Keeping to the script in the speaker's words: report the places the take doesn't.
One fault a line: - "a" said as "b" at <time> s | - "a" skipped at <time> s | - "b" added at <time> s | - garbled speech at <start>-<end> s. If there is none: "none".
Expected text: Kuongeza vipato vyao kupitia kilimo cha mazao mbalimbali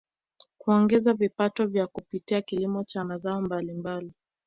none